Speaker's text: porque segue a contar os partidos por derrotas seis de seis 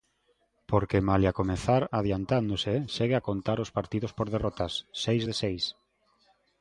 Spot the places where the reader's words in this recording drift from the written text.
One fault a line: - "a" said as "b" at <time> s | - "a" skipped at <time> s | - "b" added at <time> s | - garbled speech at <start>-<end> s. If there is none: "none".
- "malia comezar adiantándose" added at 1.1 s